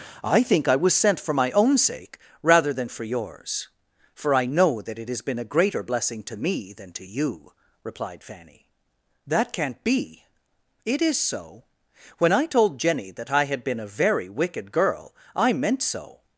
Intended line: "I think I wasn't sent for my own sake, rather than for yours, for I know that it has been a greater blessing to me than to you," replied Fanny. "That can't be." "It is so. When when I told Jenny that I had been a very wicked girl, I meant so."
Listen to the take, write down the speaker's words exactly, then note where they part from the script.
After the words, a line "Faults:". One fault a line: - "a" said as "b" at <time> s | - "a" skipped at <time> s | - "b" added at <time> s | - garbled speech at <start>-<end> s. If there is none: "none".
"I think I was sent for my own sake, rather than for yours, for I know that it has been a greater blessing to me than to you," replied Fanny. "That can't be." "It is so. When I told Jenny that I had been a very wicked girl, I meant so."
Faults:
- "wasn't" said as "was" at 0.8 s
- "when" skipped at 12.3 s